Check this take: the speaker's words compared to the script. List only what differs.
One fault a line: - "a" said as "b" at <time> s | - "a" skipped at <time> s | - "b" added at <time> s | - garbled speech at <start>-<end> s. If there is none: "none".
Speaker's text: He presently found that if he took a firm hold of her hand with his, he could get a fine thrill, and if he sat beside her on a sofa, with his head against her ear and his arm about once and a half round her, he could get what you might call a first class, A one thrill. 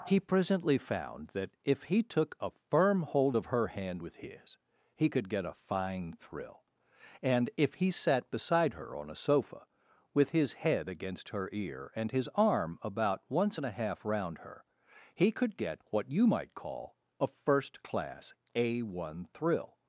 none